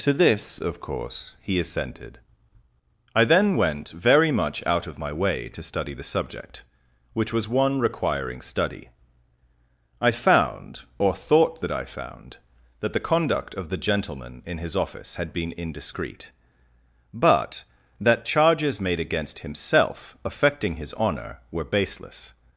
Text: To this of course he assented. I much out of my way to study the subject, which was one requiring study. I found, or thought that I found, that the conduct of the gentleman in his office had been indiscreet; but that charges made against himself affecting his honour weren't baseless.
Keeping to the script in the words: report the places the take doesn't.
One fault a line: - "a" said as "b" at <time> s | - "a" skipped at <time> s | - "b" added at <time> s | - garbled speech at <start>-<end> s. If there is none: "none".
- "then went very" added at 3.2 s
- "weren't" said as "were" at 21.5 s